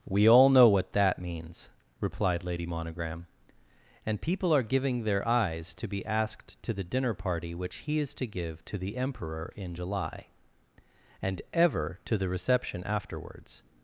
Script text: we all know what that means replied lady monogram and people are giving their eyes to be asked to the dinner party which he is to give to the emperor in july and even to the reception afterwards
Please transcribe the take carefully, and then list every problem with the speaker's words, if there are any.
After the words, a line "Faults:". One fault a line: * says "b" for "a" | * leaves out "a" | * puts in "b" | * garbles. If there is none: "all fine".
we all know what that means replied lady monogram and people are giving their eyes to be asked to the dinner party which he is to give to the emperor in july and ever to the reception afterwards
Faults:
* says "ever" for "even"